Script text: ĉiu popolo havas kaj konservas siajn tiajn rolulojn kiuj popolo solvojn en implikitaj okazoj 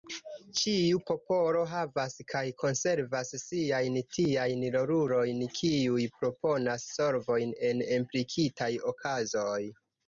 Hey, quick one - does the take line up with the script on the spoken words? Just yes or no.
no